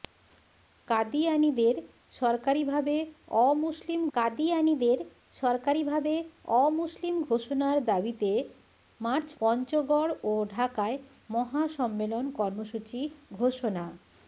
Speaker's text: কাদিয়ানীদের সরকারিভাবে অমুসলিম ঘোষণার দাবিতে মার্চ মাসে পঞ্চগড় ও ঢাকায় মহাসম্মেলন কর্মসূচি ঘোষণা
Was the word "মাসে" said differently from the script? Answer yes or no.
yes